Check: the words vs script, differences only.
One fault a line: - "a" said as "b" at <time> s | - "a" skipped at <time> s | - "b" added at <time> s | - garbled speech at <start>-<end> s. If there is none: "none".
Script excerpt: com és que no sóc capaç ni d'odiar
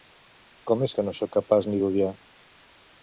none